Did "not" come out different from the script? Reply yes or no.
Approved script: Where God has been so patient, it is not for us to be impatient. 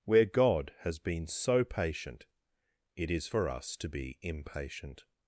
yes